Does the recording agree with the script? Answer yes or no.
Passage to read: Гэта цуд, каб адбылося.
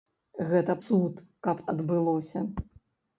yes